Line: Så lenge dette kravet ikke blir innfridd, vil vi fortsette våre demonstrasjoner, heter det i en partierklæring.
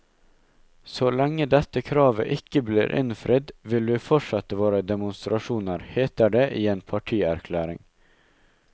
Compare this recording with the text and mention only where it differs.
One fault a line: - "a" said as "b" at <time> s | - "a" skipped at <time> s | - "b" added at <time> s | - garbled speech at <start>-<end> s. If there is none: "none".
none